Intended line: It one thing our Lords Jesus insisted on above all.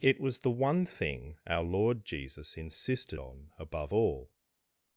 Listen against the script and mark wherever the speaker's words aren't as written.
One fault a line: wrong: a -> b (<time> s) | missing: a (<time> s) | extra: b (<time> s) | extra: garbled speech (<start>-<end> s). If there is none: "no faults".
extra: was the (0.2 s)
wrong: Lords -> Lord (1.6 s)